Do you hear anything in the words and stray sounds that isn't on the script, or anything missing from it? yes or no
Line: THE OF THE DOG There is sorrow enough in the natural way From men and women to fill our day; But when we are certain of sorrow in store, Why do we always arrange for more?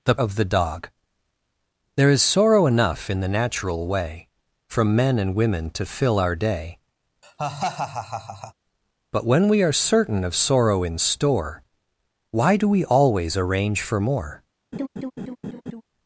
yes